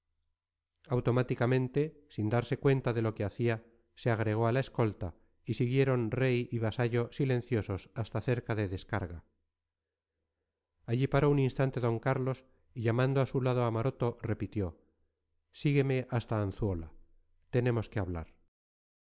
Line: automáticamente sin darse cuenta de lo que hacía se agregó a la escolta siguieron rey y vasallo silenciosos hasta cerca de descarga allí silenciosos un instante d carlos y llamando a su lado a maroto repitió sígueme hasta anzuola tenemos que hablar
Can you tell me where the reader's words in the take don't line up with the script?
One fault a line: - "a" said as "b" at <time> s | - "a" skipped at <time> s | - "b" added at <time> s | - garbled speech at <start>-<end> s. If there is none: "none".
- "y" added at 5.4 s
- "silenciosos" said as "paró" at 11.1 s